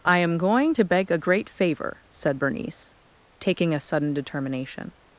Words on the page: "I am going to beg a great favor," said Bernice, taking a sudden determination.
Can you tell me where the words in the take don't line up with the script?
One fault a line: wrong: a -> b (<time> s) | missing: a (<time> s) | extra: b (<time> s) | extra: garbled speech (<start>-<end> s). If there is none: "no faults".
no faults